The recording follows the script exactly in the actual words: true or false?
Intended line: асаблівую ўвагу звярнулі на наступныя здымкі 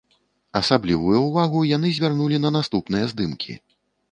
false